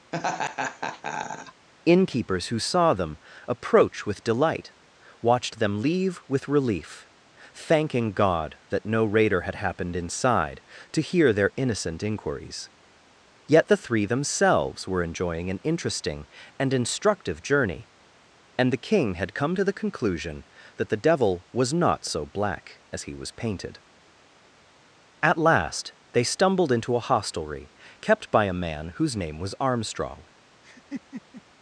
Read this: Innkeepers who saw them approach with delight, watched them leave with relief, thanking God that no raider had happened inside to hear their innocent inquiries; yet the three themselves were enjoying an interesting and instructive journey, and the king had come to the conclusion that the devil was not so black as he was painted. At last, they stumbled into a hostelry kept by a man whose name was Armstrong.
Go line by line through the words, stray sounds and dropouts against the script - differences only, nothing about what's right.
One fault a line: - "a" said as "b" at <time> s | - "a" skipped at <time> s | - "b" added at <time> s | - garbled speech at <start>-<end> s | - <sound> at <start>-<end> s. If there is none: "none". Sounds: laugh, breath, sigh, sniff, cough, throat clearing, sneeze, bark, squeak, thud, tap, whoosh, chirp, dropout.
- laugh at 0.1-1.7 s
- laugh at 30.6-31.4 s